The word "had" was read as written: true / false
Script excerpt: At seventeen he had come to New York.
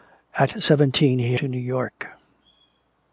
false